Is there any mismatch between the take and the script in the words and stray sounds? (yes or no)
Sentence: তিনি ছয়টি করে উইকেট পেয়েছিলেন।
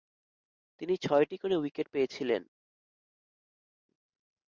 no